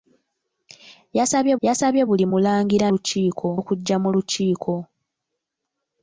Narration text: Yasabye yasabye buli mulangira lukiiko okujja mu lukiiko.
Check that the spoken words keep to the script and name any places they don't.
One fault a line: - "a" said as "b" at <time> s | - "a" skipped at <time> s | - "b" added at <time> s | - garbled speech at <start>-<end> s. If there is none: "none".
none